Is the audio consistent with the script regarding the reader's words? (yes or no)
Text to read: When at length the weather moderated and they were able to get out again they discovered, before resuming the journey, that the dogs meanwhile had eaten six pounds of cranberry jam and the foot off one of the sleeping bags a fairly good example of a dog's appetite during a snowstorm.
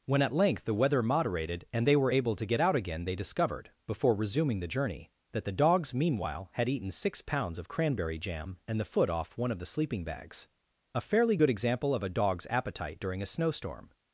yes